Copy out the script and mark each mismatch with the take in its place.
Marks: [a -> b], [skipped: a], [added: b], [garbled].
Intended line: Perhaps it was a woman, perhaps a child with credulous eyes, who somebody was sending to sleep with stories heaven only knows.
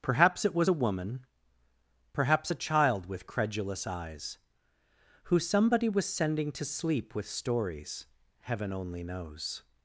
Perhaps it was a woman, perhaps a child with credulous eyes, who somebody was sending to sleep with stories heaven only knows.